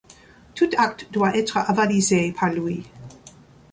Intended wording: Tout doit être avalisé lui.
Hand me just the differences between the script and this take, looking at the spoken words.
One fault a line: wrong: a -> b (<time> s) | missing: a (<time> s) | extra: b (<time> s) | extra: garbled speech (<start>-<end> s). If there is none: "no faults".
extra: acte (0.8 s)
extra: par (2.3 s)